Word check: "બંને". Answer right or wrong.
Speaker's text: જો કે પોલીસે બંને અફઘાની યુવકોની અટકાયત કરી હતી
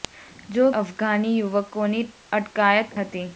wrong